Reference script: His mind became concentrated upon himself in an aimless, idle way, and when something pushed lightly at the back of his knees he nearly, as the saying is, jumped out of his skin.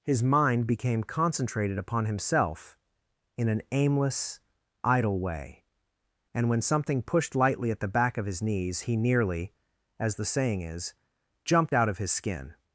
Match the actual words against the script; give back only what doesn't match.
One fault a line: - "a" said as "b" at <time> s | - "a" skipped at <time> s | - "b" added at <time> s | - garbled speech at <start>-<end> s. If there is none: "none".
none